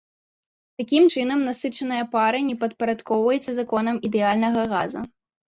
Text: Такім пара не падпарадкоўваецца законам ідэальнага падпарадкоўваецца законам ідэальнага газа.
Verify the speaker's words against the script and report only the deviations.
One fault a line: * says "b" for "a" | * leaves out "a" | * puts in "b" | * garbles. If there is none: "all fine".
* puts in "чынам насычаная"
* leaves out "падпарадкоўваецца законам ідэальнага"